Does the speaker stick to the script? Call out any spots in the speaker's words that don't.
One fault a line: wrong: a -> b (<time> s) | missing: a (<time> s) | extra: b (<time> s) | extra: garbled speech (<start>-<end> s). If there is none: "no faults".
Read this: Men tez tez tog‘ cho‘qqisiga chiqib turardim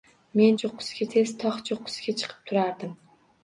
wrong: tez -> cho‘qqisiga (0.6 s)